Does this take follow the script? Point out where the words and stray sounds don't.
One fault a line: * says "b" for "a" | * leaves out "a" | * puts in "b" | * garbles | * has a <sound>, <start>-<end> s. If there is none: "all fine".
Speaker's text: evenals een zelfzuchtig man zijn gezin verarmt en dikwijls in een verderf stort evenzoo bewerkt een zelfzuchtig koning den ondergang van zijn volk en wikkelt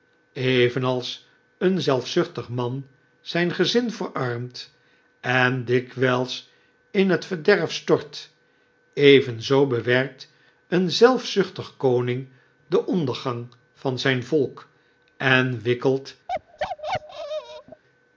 * says "het" for "een"
* has a bark, 16.3-17.8 s